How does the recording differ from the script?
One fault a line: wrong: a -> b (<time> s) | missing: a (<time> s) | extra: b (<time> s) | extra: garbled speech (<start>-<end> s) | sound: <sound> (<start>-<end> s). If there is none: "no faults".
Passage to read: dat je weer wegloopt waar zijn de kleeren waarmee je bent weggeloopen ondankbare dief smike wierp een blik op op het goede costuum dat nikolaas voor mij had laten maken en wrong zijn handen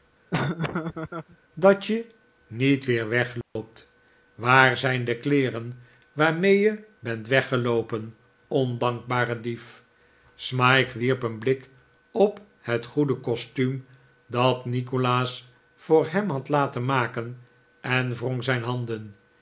sound: laugh (0.3-1.4 s)
extra: niet (2.5 s)
sound: dropout (3.4-3.6 s)
missing: op (12.4 s)
wrong: mij -> hem (16.1 s)